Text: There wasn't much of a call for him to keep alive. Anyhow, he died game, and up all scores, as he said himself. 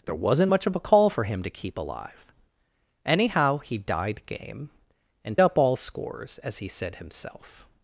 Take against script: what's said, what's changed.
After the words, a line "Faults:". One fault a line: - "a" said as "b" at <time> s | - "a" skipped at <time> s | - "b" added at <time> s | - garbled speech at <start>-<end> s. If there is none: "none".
There wasn't much of a call for him to keep alive. Anyhow, he died game, and up all scores, as he said himself.
Faults:
none